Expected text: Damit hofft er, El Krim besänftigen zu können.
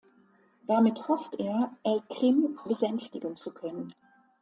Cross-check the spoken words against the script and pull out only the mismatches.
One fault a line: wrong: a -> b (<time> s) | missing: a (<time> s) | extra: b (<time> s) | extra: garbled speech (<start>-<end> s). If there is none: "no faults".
no faults